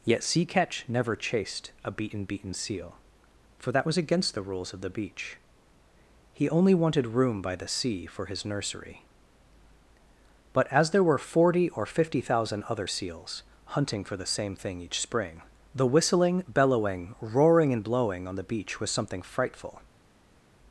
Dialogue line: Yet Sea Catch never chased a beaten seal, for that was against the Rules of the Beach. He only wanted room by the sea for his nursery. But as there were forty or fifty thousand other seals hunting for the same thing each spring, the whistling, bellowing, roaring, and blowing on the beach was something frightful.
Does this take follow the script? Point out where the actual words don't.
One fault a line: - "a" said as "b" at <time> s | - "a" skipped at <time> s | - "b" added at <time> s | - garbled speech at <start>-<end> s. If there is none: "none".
- "beaten" added at 2.2 s